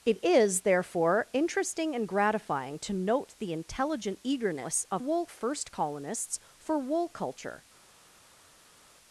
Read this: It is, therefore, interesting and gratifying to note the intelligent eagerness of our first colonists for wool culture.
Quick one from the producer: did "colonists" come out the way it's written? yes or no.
yes